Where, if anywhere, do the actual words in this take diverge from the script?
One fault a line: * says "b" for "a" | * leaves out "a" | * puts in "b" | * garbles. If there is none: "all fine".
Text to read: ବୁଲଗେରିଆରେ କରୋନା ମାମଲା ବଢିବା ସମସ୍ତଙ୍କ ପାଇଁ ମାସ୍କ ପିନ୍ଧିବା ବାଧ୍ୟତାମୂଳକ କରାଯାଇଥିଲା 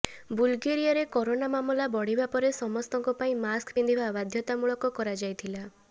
* puts in "ପରେ"